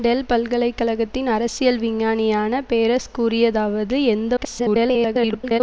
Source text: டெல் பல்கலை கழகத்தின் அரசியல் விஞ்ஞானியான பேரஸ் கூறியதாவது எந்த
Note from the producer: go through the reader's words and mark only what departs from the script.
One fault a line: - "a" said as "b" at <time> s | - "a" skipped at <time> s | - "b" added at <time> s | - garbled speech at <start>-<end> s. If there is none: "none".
- garbled speech at 4.4-5.6 s